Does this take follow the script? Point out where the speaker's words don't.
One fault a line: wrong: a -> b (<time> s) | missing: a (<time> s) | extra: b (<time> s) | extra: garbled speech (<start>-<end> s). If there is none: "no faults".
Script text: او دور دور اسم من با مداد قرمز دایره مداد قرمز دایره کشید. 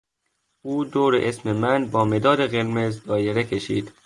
missing: دور (1.1 s)
missing: مداد قرمز دایره (3.4 s)